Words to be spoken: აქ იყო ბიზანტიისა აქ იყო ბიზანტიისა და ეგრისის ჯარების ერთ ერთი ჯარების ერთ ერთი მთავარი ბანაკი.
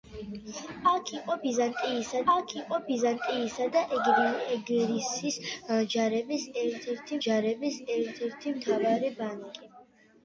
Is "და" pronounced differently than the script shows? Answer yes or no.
no